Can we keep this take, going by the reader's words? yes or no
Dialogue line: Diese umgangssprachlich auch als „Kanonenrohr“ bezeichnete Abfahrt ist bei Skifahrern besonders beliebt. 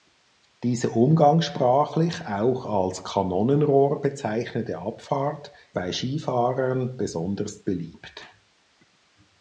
no